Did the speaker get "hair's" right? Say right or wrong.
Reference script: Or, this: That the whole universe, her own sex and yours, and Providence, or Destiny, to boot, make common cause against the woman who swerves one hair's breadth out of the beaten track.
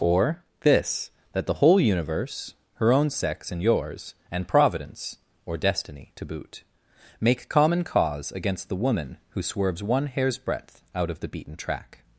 right